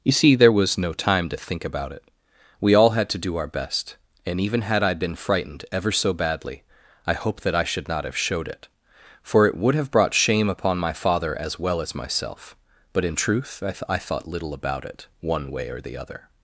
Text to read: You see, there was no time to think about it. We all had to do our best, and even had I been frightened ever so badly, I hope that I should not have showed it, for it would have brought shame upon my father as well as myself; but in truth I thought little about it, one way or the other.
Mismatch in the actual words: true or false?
true